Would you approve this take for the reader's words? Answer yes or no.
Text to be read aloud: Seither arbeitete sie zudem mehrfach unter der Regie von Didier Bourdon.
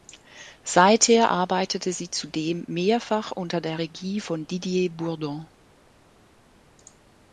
yes